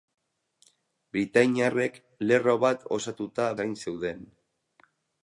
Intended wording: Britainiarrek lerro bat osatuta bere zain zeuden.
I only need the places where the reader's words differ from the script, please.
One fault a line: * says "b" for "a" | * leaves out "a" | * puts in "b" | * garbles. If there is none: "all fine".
* leaves out "bere"